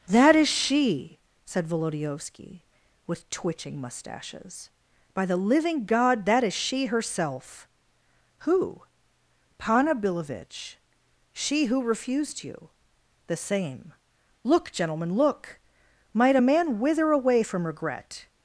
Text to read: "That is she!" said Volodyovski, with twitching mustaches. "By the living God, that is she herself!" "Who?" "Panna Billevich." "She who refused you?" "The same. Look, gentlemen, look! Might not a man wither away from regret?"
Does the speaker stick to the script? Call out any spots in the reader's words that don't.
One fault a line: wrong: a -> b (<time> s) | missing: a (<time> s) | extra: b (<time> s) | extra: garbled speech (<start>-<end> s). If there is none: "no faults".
missing: not (16.4 s)